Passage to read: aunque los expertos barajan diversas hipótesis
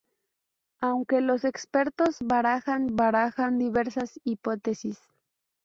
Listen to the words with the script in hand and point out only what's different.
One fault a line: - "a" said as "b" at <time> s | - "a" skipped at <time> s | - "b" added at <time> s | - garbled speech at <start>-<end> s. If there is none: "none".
- "barajan" added at 2.9 s